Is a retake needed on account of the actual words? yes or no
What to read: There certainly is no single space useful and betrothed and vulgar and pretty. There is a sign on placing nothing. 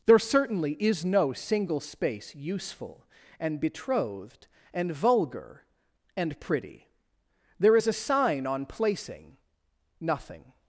no